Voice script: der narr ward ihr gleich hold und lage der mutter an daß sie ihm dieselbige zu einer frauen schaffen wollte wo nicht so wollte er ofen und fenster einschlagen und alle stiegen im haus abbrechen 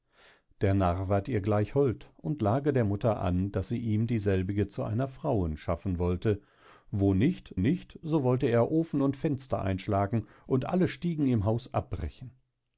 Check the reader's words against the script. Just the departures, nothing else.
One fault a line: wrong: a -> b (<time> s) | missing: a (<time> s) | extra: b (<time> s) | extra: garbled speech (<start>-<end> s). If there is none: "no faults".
extra: nicht (7.6 s)